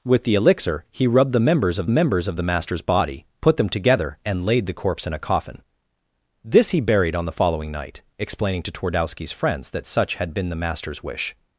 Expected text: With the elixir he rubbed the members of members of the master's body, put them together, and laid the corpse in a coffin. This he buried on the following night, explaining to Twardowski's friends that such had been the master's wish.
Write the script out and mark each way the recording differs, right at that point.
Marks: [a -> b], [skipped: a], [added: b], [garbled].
With the elixir he rubbed the members of members of the master's body, put them together, and laid the corpse in a coffin. This he buried on the following night, explaining to Twardowski's friends that such had been the master's wish.